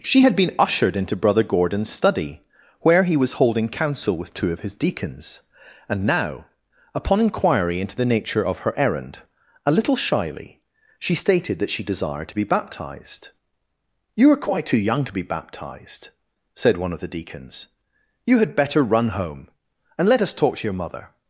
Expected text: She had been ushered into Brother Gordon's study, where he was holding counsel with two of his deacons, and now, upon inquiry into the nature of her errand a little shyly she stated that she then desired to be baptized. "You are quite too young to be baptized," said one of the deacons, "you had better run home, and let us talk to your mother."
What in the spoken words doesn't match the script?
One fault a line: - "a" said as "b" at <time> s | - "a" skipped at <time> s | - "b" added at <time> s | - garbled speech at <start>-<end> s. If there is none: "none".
- "then" skipped at 11.8 s